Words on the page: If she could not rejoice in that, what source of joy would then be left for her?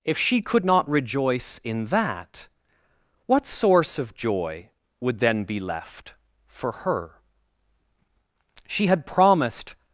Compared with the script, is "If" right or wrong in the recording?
right